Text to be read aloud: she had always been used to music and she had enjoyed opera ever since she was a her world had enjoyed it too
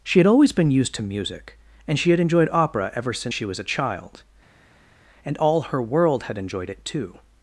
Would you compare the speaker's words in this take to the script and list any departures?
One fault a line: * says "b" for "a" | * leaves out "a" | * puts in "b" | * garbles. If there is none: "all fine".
* puts in "child and all"